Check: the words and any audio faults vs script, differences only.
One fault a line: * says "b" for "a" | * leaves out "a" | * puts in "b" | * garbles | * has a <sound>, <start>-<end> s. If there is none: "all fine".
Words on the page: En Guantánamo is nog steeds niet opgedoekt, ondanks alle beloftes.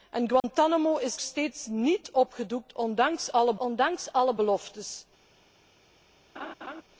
* has a dropout, 0.4-0.4 s
* leaves out "nog"
* puts in "ondanks alle"
* has a laugh, 6.3-6.8 s